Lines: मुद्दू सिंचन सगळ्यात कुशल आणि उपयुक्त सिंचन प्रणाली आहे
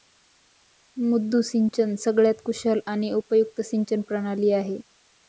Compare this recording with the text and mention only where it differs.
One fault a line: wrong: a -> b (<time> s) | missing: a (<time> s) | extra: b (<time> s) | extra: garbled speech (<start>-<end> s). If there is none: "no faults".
no faults